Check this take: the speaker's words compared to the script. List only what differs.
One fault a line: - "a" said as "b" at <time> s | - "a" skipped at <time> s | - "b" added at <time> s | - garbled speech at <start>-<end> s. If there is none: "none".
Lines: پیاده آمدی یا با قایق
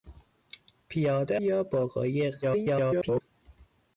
- "آمدی" skipped at 1.4 s
- garbled speech at 2.4-3.2 s